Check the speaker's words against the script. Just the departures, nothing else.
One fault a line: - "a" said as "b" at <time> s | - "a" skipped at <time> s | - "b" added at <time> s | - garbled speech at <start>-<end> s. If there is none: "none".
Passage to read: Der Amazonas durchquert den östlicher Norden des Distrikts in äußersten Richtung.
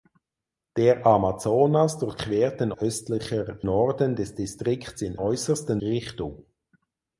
none